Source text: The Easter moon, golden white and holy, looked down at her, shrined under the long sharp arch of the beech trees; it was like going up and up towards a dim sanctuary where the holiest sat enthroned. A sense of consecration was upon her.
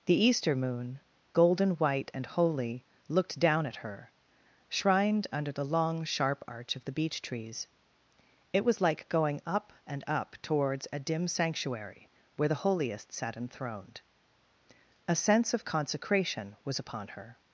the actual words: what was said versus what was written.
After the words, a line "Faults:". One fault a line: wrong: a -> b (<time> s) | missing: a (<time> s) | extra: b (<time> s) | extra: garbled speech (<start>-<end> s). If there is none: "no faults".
The Easter moon, golden white and holy, looked down at her, shrined under the long sharp arch of the beech trees; it was like going up and up towards a dim sanctuary where the holiest sat enthroned. A sense of consecration was upon her.
Faults:
no faults